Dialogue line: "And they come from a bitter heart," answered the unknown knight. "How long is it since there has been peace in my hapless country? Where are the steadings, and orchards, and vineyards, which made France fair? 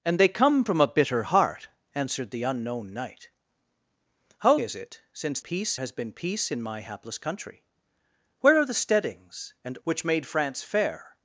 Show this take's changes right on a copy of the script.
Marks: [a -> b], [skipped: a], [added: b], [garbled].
"And they come from a bitter heart," answered the unknown knight. "How [skipped: long] is it since [there -> peace] has been peace in my hapless country? Where are the steadings, and [skipped: orchards, and vineyards,] which made France fair?